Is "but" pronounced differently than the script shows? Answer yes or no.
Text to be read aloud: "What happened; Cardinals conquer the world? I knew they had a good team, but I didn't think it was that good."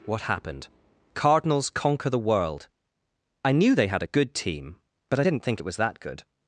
no